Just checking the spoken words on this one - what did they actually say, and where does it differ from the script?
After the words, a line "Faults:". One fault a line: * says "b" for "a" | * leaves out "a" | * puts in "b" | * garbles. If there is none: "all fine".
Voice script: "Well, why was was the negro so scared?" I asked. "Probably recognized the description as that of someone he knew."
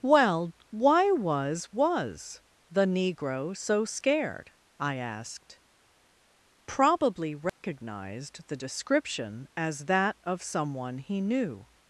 "Well, why was was the negro so scared?" I asked. "Probably recognized the description as that of someone he knew."
Faults:
all fine